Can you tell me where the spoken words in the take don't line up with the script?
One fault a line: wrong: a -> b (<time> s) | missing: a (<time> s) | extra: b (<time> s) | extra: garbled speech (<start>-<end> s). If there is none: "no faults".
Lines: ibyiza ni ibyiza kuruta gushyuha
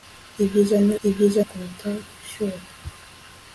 no faults